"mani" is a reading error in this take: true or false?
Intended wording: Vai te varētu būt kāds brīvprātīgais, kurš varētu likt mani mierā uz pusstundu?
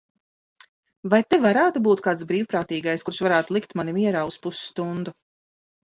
false